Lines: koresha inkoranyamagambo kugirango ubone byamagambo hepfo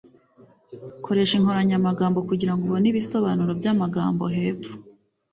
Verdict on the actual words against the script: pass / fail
fail